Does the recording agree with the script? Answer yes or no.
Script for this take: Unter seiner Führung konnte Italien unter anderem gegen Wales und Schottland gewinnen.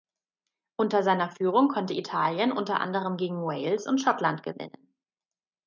yes